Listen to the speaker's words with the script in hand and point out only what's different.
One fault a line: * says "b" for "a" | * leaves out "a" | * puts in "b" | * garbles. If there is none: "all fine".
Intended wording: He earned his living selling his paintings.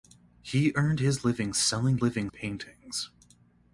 * says "living" for "his"